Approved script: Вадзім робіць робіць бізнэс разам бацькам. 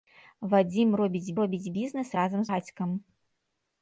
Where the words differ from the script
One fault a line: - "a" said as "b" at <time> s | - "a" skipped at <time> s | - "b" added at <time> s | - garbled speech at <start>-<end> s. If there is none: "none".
none